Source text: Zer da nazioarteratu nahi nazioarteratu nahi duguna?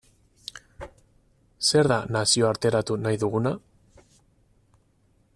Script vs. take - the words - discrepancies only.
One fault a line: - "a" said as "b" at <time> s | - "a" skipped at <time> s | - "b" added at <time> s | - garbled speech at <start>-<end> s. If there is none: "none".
- "nazioarteratu nahi" skipped at 3.2 s